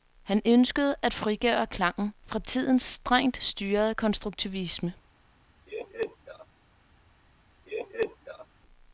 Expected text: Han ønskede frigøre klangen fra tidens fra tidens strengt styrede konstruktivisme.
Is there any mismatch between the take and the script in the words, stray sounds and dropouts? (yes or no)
yes